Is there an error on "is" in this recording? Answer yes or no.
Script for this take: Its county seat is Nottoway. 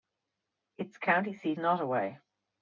yes